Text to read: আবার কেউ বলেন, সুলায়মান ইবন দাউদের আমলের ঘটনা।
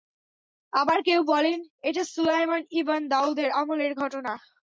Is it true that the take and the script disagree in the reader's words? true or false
true